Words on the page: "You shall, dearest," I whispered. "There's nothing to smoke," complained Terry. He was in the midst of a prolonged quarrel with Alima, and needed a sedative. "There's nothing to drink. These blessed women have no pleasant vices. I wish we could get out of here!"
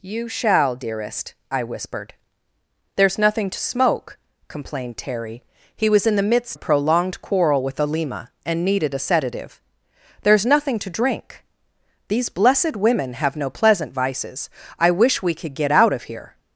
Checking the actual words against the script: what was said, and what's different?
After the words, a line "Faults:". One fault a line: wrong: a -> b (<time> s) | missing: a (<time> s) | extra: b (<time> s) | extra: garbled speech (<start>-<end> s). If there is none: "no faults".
"You shall, dearest," I whispered. "There's nothing to smoke," complained Terry. He was in the midst a prolonged quarrel with Alima, and needed a sedative. "There's nothing to drink. These blessed women have no pleasant vices. I wish we could get out of here!"
Faults:
missing: of (6.6 s)